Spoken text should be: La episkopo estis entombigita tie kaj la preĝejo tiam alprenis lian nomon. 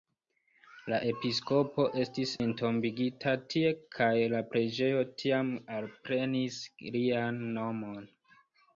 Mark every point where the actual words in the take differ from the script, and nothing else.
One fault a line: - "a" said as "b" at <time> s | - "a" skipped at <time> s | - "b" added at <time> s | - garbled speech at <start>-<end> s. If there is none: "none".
none